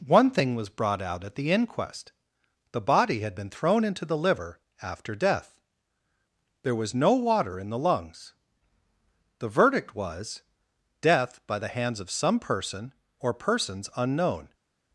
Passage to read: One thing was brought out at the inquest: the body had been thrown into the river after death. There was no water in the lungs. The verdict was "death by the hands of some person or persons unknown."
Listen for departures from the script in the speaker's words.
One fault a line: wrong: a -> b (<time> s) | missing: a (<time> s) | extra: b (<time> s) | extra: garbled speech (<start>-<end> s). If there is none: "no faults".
wrong: river -> liver (4.2 s)